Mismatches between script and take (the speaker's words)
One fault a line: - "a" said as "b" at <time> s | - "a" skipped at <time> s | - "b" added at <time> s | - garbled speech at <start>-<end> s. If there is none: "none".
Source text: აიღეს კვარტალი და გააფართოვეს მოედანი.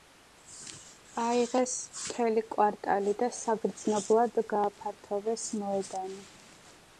- "მთელი" added at 2.0 s
- "საგრძნობლად" added at 3.4 s